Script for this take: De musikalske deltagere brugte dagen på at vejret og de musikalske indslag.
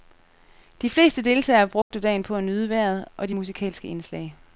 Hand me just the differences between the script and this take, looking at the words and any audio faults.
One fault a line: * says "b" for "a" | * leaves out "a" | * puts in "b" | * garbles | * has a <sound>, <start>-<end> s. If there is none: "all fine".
* says "fleste" for "musikalske"
* has a dropout, 1.8-1.9 s
* puts in "nyde"